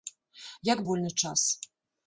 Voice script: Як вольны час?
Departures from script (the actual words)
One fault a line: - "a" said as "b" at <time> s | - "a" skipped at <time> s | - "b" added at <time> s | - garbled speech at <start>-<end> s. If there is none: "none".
none